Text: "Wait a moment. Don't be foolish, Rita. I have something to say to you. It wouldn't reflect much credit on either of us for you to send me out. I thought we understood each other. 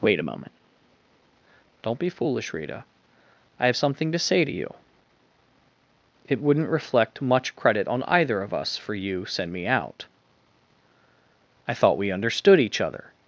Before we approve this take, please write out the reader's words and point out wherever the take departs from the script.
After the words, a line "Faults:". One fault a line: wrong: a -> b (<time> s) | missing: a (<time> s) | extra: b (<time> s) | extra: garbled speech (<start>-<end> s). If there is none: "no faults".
"Wait a moment. Don't be foolish, Rita. I have something to say to you. It wouldn't reflect much credit on either of us for you send me out. I thought we understood each other.
Faults:
missing: to (9.2 s)